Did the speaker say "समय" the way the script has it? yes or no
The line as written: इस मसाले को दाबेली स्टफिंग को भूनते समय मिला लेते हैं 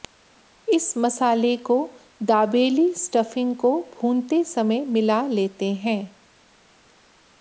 yes